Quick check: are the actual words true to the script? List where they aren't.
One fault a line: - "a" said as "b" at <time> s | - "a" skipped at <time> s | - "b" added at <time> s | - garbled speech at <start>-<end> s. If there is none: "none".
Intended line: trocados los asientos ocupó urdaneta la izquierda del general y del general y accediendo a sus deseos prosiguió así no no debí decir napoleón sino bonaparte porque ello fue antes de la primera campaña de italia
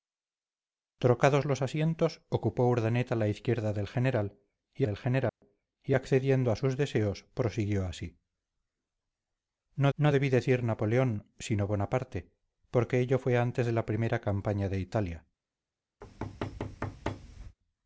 none